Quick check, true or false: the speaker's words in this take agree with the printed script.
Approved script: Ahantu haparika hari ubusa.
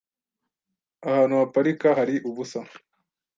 true